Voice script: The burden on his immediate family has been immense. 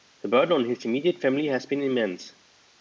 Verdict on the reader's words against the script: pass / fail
pass